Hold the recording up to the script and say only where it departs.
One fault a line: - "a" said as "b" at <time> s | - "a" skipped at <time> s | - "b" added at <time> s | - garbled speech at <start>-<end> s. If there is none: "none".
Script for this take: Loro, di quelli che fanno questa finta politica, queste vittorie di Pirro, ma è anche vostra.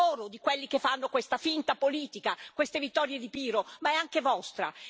none